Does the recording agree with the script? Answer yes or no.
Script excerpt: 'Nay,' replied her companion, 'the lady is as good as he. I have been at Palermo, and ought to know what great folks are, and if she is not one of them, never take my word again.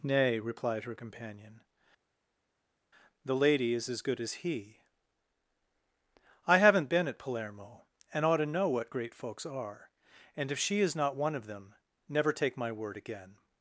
no